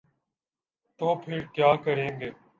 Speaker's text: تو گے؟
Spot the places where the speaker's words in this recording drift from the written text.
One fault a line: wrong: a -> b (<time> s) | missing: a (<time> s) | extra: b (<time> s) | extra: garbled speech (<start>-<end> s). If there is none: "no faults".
extra: پھر کیا کریں (1.1 s)